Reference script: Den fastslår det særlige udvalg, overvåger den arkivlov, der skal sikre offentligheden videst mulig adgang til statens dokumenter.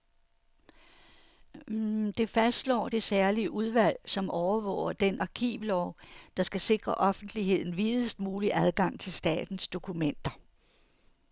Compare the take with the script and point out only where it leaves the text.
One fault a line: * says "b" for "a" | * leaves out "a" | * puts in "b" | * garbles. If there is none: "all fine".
* says "Det" for "Den"
* puts in "som"